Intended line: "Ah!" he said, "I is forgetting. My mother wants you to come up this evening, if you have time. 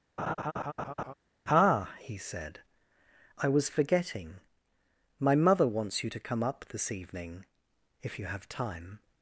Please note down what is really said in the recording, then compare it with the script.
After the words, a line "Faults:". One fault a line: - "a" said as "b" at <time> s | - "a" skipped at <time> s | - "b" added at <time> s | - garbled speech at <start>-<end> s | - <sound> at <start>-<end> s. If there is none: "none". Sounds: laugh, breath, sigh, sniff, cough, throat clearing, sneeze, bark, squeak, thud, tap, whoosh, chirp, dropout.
"Ah!" he said, "I was forgetting. My mother wants you to come up this evening, if you have time.
Faults:
- laugh at 0.2-1.1 s
- "is" said as "was" at 3.5 s